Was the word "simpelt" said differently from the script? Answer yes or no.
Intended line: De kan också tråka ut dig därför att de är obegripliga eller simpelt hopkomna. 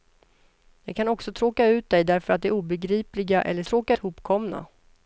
yes